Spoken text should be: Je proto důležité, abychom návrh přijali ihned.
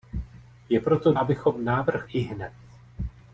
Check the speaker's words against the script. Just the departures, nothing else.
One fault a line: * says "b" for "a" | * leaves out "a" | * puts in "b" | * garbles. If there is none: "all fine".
* leaves out "důležité"
* leaves out "přijali"